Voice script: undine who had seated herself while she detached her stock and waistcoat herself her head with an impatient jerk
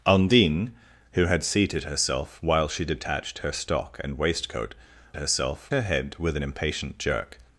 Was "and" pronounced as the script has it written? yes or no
yes